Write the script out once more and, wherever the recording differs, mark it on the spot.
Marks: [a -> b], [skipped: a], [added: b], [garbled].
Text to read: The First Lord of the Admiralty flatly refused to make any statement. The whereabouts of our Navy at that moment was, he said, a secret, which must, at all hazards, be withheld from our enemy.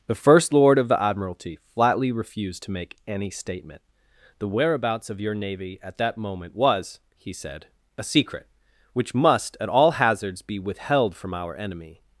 The First Lord of the Admiralty flatly refused to make any statement. The whereabouts of [our -> your] Navy at that moment was, he said, a secret, which must, at all hazards, be withheld from our enemy.